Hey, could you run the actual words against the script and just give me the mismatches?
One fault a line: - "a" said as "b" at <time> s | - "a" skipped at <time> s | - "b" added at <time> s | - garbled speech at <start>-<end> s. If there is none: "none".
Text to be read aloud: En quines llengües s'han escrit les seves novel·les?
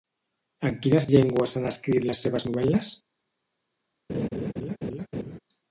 none